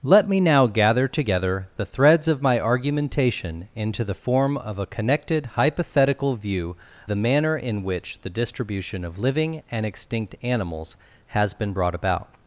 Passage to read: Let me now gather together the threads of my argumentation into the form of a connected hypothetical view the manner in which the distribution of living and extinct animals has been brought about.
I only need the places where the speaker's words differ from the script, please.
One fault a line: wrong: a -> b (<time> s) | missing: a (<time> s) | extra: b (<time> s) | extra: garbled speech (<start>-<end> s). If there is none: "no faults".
no faults